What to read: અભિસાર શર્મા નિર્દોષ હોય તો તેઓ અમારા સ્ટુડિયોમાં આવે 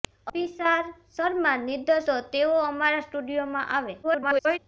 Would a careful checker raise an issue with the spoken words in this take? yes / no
yes